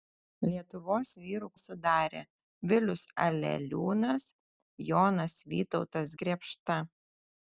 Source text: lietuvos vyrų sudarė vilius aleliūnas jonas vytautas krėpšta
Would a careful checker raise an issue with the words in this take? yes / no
no